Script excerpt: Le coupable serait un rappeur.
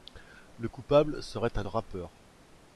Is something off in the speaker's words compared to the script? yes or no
no